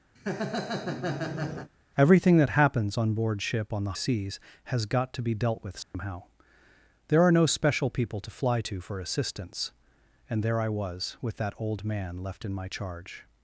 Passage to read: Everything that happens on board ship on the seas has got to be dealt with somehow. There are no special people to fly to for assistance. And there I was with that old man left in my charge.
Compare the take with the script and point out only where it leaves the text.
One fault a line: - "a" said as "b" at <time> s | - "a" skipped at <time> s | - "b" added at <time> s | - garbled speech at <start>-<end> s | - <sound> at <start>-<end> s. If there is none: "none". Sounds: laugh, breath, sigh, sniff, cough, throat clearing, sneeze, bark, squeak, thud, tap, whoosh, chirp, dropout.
- laugh at 0.2-1.7 s
- dropout at 5.8-5.9 s